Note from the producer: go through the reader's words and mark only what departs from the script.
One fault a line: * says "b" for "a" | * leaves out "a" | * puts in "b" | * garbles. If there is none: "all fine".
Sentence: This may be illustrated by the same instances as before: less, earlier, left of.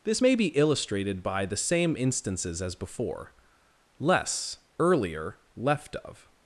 all fine